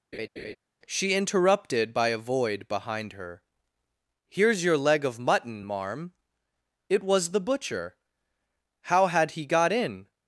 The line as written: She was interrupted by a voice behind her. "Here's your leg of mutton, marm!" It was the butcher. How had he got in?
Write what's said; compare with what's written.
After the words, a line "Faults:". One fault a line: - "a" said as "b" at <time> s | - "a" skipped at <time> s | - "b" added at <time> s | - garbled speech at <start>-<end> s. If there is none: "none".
She interrupted by a void behind her. "Here's your leg of mutton, marm!" It was the butcher. How had he got in?
Faults:
- "was" skipped at 1.1 s
- "voice" said as "void" at 2.2 s